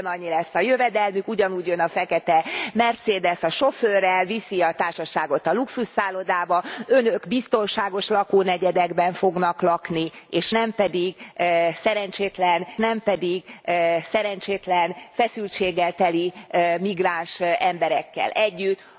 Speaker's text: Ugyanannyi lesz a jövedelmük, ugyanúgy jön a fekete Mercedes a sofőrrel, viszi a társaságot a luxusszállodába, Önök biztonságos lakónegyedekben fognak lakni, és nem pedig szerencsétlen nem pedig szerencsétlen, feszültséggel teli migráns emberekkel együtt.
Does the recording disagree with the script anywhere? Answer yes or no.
no